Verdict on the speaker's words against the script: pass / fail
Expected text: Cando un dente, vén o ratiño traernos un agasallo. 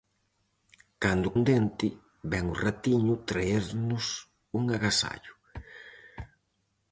pass